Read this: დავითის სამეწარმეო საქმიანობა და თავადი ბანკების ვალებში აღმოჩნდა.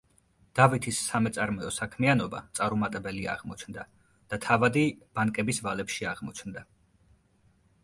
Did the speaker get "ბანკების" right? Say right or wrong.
right